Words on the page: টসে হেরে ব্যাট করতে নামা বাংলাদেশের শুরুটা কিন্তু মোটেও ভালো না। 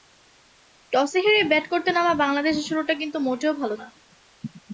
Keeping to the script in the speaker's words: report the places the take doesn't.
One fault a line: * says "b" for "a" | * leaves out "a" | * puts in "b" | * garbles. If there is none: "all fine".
all fine